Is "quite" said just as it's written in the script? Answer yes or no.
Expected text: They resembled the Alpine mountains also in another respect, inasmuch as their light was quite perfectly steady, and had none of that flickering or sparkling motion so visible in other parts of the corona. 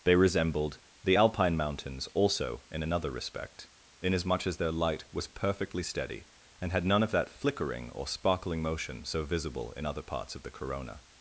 no